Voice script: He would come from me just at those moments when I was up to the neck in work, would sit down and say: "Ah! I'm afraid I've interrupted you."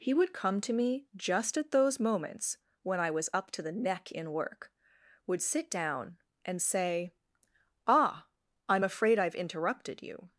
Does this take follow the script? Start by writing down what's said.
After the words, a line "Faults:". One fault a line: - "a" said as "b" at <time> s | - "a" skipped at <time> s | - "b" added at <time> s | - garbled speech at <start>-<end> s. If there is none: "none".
He would come to me just at those moments when I was up to the neck in work, would sit down and say: "Ah! I'm afraid I've interrupted you."
Faults:
- "from" said as "to" at 0.6 s